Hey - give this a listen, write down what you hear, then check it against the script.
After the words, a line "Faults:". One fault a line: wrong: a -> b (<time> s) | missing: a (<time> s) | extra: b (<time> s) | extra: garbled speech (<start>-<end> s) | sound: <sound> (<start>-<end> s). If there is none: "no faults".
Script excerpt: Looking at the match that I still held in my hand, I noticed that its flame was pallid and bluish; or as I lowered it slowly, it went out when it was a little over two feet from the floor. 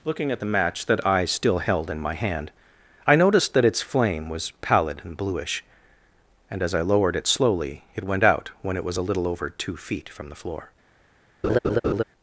Looking at the match that I still held in my hand, I noticed that its flame was pallid and bluish; and as I lowered it slowly, it went out when it was a little over two feet from the floor.
Faults:
wrong: or -> and (6.5 s)
sound: laugh (11.4-12.0 s)